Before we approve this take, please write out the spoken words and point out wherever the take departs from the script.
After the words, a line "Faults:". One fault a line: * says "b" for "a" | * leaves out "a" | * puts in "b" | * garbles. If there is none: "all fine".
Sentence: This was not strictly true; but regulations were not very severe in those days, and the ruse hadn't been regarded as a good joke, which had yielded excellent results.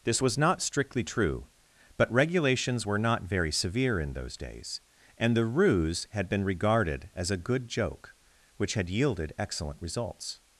This was not strictly true; but regulations were not very severe in those days, and the ruse had been regarded as a good joke, which had yielded excellent results.
Faults:
* says "had" for "hadn't"